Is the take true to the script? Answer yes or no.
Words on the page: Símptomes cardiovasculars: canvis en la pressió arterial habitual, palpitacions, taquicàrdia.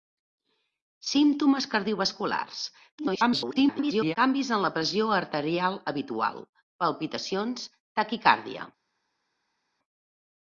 no